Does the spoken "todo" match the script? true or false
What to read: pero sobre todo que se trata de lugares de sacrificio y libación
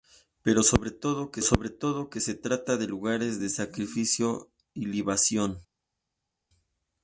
true